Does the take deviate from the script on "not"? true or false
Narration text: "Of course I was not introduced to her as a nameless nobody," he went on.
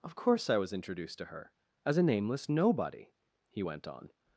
true